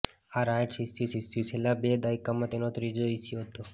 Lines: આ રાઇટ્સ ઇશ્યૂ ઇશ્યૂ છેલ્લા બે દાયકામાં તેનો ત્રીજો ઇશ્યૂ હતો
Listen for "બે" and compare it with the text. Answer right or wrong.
right